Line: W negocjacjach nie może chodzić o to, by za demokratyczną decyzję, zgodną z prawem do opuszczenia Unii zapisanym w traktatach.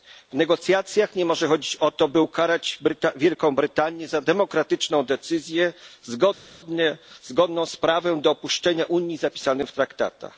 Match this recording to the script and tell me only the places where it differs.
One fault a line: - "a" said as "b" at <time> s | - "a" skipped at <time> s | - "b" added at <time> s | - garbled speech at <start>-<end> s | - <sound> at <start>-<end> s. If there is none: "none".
- "ukarać Wielką Brytanię" added at 2.2 s